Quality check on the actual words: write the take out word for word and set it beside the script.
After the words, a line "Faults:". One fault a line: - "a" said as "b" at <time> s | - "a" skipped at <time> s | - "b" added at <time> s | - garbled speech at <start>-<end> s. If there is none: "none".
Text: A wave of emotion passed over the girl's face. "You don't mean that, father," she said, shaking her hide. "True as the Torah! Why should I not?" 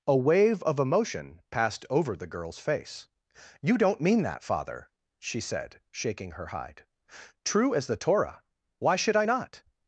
A wave of emotion passed over the girl's face. "You don't mean that, father," she said, shaking her hide. "True as the Torah! Why should I not?"
Faults:
none